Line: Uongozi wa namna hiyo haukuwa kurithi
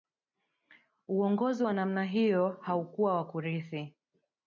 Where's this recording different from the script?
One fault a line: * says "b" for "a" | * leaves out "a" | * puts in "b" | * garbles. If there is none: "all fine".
* puts in "wa"